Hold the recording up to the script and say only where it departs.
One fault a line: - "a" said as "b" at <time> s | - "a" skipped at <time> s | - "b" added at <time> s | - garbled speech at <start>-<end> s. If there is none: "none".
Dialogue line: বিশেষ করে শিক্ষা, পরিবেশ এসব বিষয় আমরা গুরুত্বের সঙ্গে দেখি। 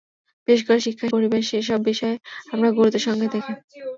none